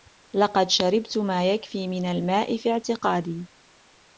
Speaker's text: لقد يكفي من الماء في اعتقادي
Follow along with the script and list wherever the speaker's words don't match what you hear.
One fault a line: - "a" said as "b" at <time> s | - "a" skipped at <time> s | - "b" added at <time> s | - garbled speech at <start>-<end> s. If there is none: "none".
- "شربت ما" added at 0.7 s